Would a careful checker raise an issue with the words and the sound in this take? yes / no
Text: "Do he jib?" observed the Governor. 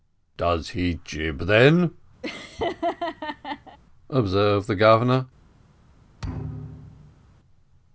yes